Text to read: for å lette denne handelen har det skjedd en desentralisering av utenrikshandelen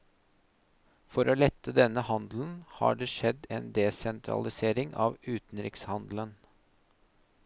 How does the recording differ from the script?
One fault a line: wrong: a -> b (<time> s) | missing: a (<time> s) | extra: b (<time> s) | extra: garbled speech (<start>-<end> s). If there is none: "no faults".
no faults